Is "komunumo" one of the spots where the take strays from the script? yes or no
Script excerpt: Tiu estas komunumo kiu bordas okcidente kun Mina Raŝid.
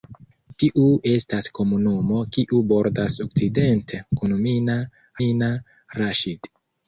no